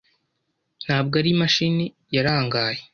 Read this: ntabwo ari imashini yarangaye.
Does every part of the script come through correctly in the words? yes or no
yes